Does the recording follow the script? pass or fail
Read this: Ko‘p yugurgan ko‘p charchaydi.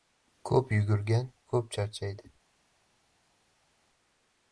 pass